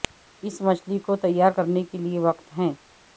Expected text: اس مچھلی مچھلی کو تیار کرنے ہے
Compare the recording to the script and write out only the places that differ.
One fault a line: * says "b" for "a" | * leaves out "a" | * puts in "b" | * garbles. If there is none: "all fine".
* leaves out "مچھلی"
* puts in "کے لئے وقت"